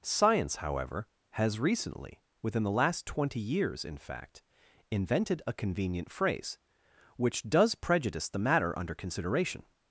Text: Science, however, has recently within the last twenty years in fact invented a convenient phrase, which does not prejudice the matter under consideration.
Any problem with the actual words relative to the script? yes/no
yes